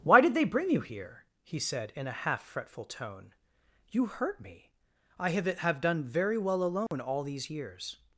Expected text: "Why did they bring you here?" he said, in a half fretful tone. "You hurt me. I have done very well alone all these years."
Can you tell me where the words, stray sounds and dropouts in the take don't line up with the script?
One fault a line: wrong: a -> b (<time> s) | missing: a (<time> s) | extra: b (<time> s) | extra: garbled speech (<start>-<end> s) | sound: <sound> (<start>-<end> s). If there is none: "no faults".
extra: have (5.4 s)
sound: dropout (6.9-6.9 s)